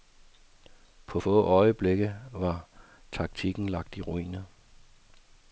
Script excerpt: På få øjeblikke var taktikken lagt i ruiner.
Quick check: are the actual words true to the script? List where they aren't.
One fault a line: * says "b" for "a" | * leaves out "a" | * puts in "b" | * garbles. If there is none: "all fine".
all fine